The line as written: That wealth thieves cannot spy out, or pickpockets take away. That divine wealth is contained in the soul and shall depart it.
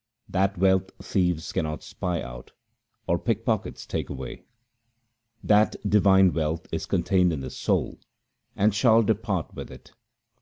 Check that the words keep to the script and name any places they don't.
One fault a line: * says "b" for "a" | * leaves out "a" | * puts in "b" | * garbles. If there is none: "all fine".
* puts in "with"